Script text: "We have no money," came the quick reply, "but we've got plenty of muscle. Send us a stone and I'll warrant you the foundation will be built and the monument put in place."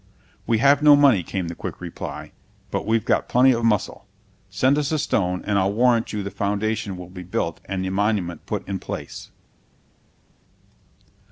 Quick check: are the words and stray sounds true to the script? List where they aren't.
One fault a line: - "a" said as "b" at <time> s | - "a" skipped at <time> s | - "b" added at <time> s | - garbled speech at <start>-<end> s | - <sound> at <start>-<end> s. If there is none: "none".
none